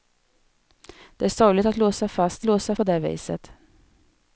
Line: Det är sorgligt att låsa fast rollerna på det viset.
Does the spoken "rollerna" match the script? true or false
false